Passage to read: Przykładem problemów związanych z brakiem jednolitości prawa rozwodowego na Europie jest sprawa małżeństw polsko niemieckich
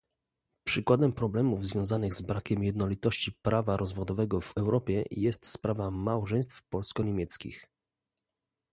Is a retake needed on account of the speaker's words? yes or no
yes